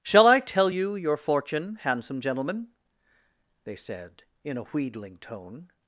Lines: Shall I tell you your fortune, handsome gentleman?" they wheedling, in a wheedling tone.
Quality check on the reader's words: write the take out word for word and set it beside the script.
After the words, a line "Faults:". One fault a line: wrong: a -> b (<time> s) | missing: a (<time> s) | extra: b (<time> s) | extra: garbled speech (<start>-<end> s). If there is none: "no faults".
Shall I tell you your fortune, handsome gentleman?" they said, in a wheedling tone.
Faults:
wrong: wheedling -> said (3.7 s)